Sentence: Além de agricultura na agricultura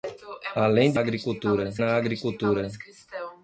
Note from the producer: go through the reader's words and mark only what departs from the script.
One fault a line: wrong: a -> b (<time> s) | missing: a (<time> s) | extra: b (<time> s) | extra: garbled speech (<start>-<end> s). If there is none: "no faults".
no faults